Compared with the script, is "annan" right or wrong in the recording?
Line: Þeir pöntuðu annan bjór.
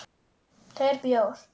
wrong